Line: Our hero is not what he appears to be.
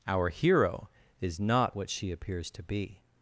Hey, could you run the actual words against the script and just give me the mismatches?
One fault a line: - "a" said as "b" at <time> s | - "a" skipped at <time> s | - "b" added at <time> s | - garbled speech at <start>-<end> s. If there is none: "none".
- "he" said as "she" at 1.9 s